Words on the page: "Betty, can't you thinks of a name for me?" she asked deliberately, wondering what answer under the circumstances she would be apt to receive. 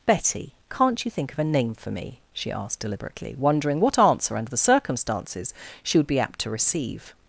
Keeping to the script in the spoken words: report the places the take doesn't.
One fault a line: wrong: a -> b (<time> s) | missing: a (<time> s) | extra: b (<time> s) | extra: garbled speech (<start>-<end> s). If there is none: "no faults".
wrong: thinks -> think (1.1 s)